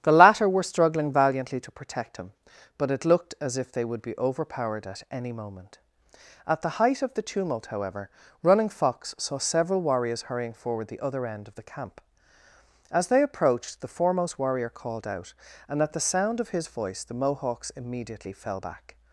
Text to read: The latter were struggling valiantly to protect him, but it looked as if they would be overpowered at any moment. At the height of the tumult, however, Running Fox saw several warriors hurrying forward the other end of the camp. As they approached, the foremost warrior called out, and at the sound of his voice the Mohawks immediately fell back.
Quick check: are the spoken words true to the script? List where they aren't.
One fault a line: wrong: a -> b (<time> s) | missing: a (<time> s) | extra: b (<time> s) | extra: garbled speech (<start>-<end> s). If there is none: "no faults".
no faults